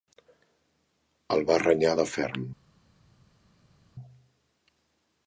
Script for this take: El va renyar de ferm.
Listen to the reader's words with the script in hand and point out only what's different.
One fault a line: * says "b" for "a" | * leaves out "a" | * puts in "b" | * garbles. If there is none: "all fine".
all fine